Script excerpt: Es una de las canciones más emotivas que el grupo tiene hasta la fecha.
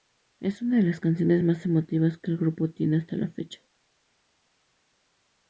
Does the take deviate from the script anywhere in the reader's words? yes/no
no